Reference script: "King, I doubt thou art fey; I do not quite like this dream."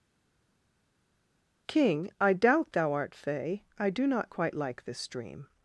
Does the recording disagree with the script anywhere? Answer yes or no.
no